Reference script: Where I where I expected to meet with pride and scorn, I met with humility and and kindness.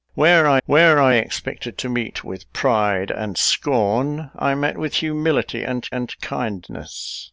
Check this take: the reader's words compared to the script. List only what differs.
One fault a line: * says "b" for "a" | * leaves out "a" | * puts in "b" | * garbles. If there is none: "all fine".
all fine